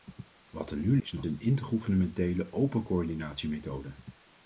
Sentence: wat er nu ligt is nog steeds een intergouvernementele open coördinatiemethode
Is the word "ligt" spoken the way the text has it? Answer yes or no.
no